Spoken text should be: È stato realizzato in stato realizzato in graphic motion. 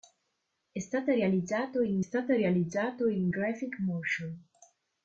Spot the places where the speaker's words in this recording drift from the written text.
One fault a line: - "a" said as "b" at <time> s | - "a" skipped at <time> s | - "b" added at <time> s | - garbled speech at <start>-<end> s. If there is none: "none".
none